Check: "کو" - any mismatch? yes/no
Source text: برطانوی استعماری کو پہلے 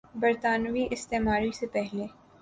yes